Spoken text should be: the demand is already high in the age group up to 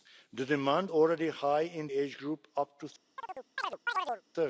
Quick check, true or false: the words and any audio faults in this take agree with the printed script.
false